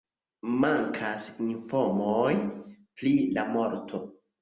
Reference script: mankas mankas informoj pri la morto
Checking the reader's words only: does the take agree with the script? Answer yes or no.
no